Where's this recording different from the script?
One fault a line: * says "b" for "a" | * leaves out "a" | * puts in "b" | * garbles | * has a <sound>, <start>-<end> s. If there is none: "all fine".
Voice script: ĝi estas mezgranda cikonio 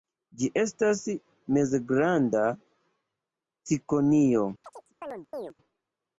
* has a chirp, 4.6-5.5 s